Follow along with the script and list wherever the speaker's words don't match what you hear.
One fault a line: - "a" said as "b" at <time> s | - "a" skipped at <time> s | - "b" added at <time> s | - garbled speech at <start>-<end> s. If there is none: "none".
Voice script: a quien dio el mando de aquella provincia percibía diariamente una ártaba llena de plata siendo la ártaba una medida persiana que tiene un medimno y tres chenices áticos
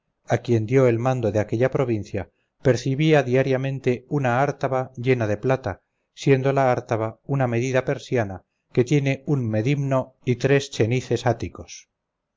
none